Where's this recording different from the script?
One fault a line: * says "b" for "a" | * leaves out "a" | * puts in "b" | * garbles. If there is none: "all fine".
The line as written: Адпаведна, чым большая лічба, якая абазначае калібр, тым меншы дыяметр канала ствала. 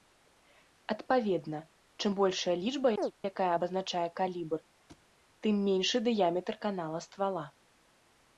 all fine